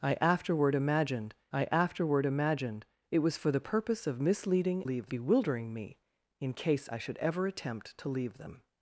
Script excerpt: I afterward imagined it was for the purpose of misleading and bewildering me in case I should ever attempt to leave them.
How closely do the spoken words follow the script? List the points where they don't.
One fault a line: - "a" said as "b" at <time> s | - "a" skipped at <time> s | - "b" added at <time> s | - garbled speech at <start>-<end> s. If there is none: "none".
- "I afterward imagined" added at 1.5 s
- "and" said as "leave" at 4.8 s